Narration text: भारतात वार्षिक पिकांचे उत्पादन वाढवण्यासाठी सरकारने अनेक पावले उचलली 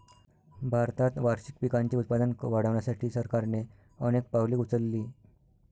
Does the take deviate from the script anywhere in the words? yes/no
no